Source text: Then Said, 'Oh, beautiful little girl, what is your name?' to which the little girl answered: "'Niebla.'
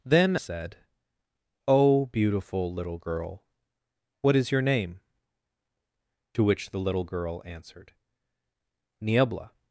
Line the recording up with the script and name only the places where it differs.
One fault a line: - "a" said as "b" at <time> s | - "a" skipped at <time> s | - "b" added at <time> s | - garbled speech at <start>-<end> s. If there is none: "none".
none